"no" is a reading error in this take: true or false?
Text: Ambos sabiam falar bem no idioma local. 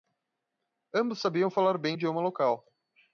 true